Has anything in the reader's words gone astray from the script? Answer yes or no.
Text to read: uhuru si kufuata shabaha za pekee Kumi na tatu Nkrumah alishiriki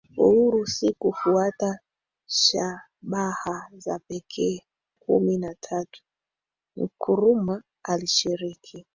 no